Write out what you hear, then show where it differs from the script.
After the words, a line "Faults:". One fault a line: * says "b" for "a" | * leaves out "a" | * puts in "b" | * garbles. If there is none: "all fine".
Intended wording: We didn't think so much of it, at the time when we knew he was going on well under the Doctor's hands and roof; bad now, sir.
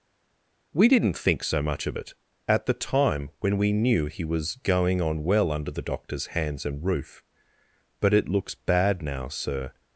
We didn't think so much of it, at the time when we knew he was going on well under the Doctor's hands and roof; but it looks bad now, sir.
Faults:
* puts in "but it looks"